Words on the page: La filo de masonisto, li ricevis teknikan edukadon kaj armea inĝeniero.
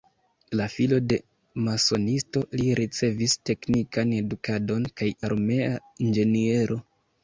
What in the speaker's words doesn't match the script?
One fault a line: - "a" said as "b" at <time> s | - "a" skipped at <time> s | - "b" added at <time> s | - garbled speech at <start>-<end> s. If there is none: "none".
none